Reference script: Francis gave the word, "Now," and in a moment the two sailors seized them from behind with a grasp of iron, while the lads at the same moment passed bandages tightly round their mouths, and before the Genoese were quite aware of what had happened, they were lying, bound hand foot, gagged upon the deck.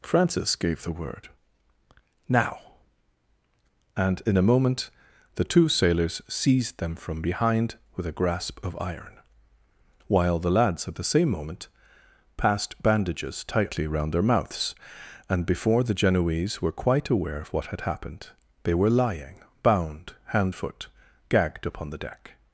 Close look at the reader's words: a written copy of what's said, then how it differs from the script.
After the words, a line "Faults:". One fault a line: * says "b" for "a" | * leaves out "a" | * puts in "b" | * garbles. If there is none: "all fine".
Francis gave the word, "Now," and in a moment the two sailors seized them from behind with a grasp of iron, while the lads at the same moment passed bandages tightly round their mouths, and before the Genoese were quite aware of what had happened, they were lying, bound hand foot, gagged upon the deck.
Faults:
all fine